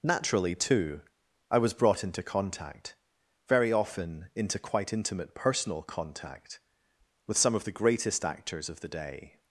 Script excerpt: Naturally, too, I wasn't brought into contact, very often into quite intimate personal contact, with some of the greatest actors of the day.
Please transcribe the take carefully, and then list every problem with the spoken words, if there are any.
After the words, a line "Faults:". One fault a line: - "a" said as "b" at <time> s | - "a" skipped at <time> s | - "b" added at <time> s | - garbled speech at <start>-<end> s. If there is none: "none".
Naturally, too, I was brought into contact, very often into quite intimate personal contact, with some of the greatest actors of the day.
Faults:
- "wasn't" said as "was" at 1.6 s